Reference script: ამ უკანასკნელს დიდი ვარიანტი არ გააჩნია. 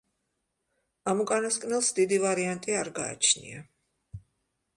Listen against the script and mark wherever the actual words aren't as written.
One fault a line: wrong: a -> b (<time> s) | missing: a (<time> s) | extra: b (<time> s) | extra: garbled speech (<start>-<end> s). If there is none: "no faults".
no faults